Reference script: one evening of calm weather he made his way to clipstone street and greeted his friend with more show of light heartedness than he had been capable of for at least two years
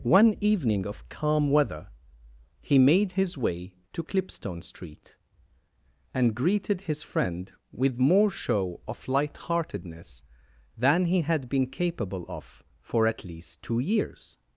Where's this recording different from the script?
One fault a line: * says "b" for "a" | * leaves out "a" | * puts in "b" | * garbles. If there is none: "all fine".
all fine